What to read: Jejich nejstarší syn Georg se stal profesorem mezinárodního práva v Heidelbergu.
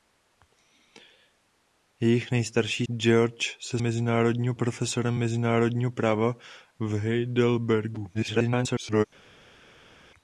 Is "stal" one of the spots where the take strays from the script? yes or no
yes